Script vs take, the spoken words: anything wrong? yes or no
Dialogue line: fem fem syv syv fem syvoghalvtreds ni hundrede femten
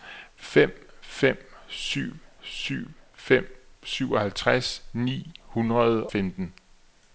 no